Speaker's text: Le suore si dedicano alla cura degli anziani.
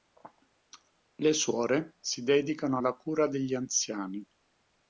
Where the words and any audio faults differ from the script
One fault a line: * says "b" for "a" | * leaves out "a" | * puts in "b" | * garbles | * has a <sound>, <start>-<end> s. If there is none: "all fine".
all fine